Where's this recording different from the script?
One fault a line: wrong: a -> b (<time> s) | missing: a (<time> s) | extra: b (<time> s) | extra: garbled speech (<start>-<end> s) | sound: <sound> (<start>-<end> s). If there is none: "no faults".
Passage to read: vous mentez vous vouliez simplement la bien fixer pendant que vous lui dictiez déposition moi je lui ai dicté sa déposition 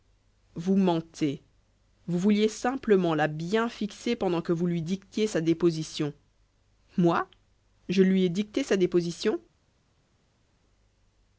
extra: sa (5.3 s)